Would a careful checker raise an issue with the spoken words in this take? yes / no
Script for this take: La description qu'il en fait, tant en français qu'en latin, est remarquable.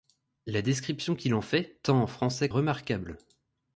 yes